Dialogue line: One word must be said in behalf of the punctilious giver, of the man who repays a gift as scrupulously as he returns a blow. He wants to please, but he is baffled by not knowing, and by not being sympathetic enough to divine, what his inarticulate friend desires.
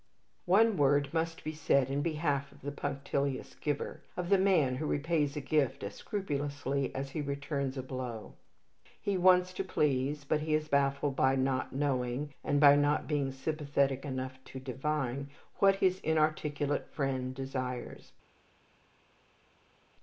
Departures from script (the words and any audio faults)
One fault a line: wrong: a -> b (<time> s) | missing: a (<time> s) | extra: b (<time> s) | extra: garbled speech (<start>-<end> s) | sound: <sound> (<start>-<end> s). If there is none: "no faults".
no faults